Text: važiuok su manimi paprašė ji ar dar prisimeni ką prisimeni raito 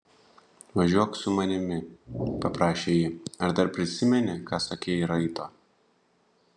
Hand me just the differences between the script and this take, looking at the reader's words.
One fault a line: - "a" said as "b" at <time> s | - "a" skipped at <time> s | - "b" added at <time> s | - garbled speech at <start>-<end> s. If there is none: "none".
- "prisimeni" said as "sakei" at 4.7 s